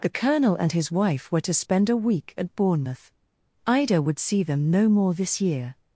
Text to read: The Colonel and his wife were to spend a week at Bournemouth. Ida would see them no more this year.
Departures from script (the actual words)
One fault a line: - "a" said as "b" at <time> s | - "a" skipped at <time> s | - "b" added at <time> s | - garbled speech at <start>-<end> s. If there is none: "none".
none